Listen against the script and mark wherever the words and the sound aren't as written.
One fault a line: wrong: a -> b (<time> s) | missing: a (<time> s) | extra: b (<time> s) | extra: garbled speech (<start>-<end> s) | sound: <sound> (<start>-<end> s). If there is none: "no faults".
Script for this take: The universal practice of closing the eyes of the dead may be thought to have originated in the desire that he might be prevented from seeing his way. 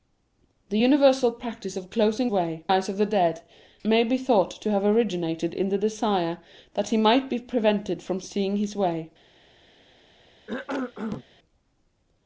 wrong: the -> way (2.3 s)
sound: cough (10.5-11.2 s)